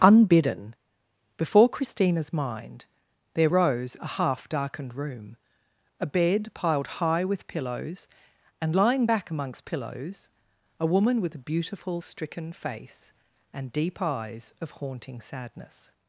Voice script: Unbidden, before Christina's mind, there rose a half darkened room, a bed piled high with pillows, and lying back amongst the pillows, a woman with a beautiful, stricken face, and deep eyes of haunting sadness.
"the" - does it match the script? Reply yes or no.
no